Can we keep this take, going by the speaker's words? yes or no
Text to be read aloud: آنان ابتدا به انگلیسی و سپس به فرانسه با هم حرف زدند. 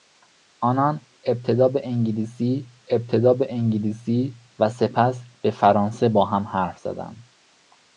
no